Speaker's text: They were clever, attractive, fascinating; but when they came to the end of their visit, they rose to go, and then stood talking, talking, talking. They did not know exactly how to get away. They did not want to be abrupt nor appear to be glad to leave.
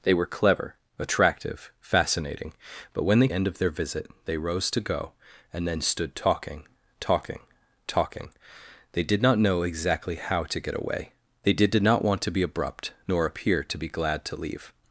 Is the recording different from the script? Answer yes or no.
yes